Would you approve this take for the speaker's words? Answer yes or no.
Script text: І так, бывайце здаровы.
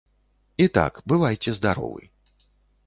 yes